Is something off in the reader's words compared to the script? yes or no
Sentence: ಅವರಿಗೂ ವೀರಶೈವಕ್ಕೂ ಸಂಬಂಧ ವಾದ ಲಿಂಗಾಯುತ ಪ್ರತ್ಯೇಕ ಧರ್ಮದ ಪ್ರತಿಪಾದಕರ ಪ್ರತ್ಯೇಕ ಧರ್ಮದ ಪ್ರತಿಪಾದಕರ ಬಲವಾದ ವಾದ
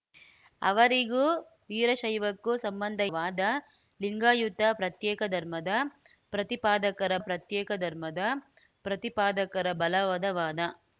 no